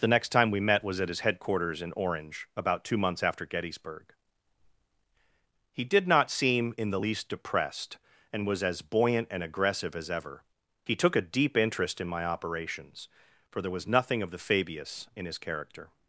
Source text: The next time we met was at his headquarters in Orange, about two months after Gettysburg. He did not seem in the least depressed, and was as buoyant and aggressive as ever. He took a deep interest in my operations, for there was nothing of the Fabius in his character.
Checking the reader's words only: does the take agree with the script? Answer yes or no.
yes